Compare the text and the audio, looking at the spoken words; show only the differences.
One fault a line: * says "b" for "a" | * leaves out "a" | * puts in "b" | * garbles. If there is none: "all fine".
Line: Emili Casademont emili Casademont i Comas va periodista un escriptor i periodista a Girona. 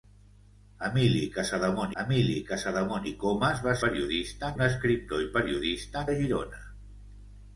all fine